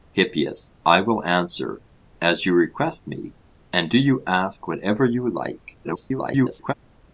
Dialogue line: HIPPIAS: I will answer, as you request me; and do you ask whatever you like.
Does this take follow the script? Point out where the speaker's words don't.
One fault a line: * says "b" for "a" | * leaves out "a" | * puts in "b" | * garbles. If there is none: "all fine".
* garbles